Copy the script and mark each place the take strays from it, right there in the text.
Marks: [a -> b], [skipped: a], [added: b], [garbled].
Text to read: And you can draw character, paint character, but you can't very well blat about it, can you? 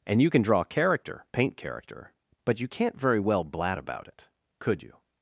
And you can draw character, paint character, but you can't very well blat about it, [can -> could] you?